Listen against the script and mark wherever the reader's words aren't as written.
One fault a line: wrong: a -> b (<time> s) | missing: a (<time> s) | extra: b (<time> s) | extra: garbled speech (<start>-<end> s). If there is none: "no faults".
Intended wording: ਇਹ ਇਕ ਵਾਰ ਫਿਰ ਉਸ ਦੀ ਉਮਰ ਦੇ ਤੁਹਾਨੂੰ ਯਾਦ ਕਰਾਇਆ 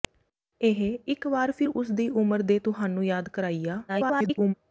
extra: garbled speech (3.9-4.5 s)